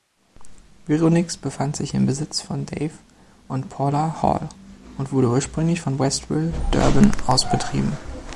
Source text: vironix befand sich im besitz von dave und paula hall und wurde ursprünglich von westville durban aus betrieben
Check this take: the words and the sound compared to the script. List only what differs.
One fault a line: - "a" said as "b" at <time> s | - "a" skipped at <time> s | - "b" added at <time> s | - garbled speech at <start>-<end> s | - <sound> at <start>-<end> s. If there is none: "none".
none